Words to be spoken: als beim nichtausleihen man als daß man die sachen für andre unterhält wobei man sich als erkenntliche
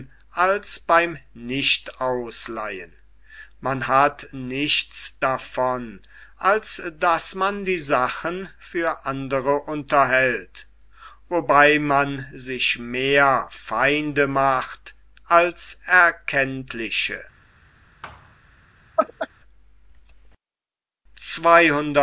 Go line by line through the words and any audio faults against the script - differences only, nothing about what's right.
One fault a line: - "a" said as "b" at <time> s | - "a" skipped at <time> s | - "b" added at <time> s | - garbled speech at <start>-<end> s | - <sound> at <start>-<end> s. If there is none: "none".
- "hat nichts davon" added at 3.9 s
- "mehr feinde macht" added at 12.8 s
- thud at 18.0-18.4 s
- laugh at 19.0-19.3 s